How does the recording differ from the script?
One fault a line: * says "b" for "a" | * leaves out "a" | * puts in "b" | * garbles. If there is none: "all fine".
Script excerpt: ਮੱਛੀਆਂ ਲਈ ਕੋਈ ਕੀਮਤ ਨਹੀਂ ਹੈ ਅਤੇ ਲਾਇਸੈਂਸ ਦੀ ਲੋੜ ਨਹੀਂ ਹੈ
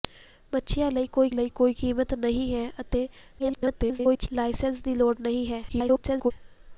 * puts in "ਲਈ ਕੋਈ"
* garbles
* garbles